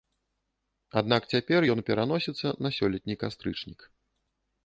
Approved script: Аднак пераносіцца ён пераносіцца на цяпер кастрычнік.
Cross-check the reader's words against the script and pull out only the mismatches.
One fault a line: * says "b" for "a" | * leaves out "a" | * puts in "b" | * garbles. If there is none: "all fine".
* says "цяпер" for "пераносіцца"
* says "сёлетні" for "цяпер"